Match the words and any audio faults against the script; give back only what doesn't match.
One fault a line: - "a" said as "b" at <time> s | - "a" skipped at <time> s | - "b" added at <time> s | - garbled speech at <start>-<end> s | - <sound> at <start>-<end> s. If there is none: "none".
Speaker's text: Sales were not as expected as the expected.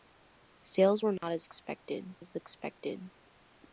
- dropout at 1.2-1.2 s